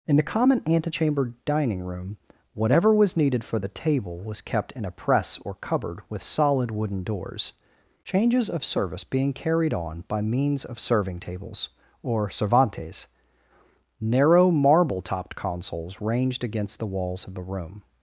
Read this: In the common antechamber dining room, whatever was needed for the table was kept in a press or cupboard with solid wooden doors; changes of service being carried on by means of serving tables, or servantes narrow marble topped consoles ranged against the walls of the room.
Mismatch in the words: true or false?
false